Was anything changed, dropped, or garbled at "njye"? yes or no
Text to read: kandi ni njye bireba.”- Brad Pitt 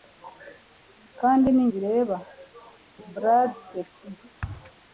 yes